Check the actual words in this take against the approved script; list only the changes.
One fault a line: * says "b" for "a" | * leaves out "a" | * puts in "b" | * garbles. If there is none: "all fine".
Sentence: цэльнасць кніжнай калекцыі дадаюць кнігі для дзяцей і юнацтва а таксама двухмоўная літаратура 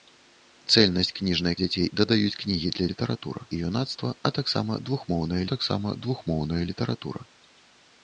* says "дзяцей" for "калекцыі"
* says "літаратура" for "дзяцей"
* puts in "таксама двухмоўная"